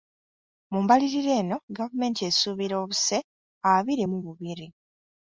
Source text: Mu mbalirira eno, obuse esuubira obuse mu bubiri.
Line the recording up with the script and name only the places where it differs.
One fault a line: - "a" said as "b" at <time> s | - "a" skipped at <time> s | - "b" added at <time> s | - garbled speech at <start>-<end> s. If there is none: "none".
- "obuse" said as "gavumenti" at 1.8 s
- "abiri" added at 3.7 s